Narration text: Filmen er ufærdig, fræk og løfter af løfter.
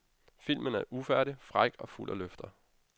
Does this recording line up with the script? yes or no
no